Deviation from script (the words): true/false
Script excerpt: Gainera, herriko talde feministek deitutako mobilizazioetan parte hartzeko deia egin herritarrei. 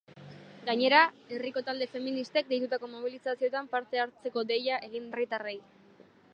false